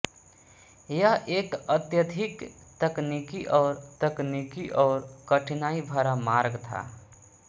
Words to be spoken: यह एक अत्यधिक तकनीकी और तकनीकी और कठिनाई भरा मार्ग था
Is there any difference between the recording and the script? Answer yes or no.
no